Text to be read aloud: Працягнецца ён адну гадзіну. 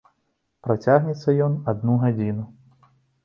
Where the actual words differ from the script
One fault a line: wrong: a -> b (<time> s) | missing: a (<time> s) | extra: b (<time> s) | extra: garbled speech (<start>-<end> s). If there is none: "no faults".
no faults